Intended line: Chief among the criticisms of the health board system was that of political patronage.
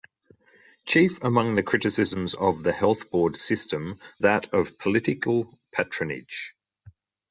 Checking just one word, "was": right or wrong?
wrong